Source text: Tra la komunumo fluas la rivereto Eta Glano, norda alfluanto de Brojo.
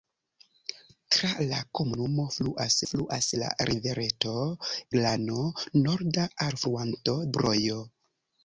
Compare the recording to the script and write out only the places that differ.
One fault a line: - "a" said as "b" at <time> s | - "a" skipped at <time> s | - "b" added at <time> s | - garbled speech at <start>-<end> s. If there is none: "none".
- "fluas" added at 2.9 s
- "Eta" skipped at 4.3 s
- "de" skipped at 7.2 s